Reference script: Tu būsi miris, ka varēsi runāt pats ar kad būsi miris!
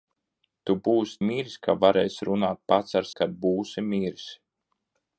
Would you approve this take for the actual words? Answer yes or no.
yes